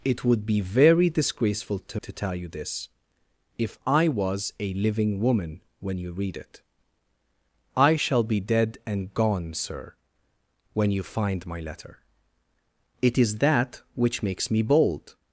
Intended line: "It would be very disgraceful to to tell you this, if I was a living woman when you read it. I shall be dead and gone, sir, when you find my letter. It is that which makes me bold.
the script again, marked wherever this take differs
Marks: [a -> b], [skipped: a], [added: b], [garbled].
"It would be very disgraceful to to tell you this, if I was a living woman when you read it. I shall be dead and gone, sir, when you find my letter. It is that which makes me bold.